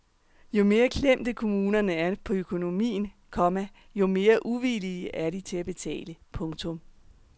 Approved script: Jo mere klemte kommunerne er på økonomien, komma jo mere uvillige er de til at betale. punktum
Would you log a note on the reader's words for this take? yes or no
no